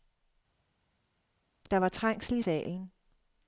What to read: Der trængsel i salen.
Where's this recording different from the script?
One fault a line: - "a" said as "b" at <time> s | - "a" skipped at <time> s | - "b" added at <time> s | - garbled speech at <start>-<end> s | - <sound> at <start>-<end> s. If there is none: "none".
- "var" added at 1.8 s